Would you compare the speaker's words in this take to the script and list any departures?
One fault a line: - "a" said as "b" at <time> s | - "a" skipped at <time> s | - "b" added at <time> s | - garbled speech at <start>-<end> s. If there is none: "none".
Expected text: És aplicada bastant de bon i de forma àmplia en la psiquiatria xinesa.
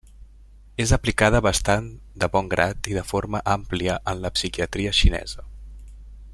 - "grat" added at 2.5 s